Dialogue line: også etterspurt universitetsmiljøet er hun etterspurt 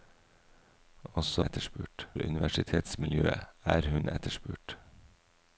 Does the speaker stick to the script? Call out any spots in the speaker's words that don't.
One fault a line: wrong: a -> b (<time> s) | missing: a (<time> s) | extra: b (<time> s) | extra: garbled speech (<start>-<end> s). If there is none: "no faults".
no faults